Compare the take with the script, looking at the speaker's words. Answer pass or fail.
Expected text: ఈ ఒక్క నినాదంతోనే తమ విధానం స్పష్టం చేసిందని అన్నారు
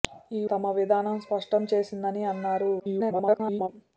fail